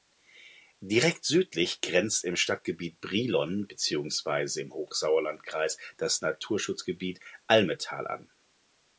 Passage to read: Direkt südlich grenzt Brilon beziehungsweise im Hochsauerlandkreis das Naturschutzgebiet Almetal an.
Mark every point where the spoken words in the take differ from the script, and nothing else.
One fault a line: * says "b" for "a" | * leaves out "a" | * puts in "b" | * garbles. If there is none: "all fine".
* puts in "im Stadtgebiet"